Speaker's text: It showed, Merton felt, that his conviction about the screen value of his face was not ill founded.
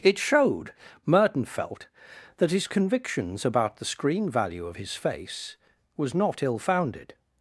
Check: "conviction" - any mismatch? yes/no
yes